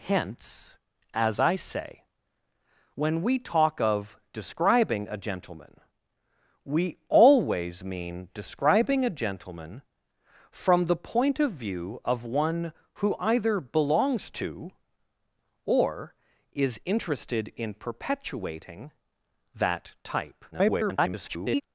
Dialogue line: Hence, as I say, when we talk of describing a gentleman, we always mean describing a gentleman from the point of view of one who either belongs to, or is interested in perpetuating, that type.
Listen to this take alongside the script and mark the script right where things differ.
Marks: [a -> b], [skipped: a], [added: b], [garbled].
Hence, as I say, when we talk of describing a gentleman, we always mean describing a gentleman from the point of view of one who either belongs to, or is interested in perpetuating, that type. [garbled]